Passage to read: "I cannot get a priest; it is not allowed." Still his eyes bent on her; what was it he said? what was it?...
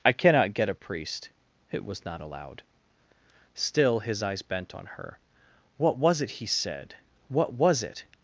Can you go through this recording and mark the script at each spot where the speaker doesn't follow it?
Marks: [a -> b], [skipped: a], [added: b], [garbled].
"I cannot get a priest; it [is -> was] not allowed." Still his eyes bent on her; what was it he said? what was it?...